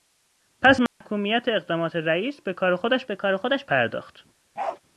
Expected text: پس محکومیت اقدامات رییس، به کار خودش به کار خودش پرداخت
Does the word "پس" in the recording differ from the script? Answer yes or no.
no